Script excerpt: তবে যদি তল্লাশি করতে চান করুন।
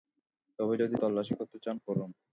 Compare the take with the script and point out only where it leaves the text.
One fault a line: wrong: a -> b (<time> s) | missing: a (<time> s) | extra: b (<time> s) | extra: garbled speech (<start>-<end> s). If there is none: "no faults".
no faults